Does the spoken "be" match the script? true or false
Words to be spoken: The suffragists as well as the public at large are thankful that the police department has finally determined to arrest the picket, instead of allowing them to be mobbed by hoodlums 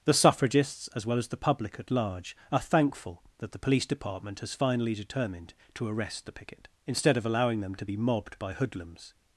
true